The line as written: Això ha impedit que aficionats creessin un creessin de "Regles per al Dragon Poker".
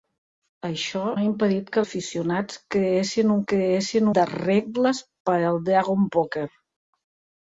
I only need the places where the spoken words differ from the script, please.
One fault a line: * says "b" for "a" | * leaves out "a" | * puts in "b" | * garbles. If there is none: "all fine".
all fine